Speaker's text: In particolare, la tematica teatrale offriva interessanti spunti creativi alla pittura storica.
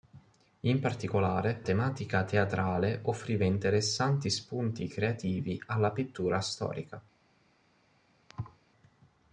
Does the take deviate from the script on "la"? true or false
true